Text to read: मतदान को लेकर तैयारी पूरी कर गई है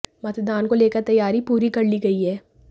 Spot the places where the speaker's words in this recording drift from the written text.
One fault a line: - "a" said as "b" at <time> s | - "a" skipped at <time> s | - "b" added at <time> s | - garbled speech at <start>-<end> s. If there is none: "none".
- "ली" added at 1.8 s